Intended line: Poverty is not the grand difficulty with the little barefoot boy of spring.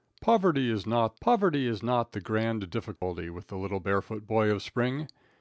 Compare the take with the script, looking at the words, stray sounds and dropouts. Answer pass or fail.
fail